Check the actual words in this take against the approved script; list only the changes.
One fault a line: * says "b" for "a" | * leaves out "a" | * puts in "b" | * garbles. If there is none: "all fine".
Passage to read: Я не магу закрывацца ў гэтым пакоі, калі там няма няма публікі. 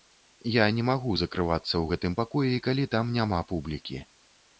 * leaves out "няма"